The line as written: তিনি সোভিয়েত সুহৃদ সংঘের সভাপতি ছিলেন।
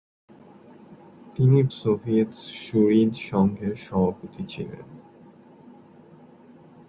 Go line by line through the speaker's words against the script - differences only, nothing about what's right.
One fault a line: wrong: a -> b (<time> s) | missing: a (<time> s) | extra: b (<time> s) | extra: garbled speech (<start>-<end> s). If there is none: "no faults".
no faults